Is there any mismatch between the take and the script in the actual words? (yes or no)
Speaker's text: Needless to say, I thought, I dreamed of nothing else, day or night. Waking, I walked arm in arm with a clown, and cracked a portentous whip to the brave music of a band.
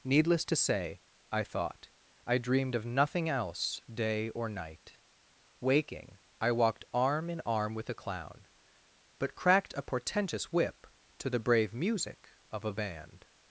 yes